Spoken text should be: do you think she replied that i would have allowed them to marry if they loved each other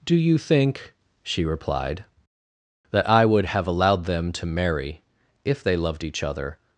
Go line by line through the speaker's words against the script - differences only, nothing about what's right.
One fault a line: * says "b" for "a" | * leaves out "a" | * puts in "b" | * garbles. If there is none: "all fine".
all fine